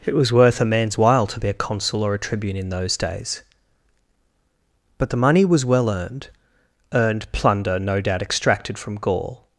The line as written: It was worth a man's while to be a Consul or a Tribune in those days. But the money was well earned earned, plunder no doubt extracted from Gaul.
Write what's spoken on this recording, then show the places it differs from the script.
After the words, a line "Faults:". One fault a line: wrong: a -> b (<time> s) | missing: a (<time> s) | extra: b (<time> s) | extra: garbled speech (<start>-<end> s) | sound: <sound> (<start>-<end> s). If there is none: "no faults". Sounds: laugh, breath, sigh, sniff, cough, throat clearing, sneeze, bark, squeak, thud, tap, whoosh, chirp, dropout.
It was worth a man's while to be a Consul or a Tribune in those days. But the money was well earned earned, plunder no doubt extracted from Gaul.
Faults:
no faults